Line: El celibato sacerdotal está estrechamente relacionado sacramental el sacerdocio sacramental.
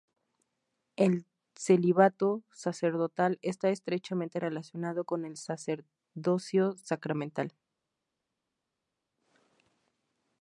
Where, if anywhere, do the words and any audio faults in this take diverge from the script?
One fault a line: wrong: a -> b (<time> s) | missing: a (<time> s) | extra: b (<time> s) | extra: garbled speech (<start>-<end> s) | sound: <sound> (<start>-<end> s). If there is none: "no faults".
wrong: sacramental -> con (5.0 s)